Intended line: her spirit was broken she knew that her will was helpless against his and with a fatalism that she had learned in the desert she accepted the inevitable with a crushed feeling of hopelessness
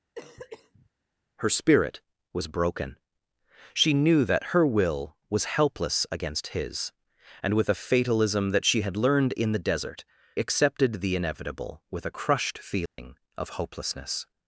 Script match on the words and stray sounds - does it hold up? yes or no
no